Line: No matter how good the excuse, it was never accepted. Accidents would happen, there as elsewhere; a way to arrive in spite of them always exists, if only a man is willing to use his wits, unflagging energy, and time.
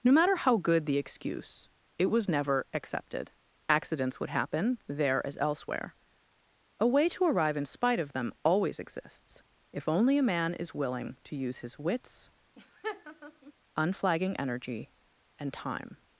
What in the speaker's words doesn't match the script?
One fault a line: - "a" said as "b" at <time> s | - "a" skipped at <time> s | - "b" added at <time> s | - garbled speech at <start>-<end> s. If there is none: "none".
none